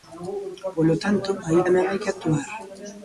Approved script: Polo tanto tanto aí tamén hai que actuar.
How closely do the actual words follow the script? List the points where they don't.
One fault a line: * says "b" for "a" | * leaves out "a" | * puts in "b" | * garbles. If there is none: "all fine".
* leaves out "tanto"